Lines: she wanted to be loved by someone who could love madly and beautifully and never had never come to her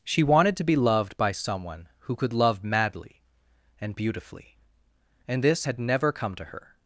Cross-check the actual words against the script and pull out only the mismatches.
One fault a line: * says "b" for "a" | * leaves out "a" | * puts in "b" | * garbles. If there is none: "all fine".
* says "this" for "never"